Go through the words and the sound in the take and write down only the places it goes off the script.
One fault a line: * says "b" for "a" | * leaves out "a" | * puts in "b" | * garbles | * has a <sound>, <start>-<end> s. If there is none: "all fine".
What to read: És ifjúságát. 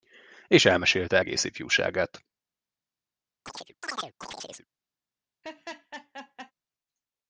* puts in "elmesélte egész"
* has a chirp, 3.5-4.7 s
* has a laugh, 5.4-6.5 s